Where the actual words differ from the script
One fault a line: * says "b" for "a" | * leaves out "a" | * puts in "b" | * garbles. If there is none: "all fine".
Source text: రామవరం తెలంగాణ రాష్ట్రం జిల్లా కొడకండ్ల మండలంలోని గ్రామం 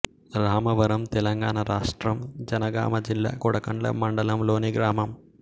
* puts in "జనగామ"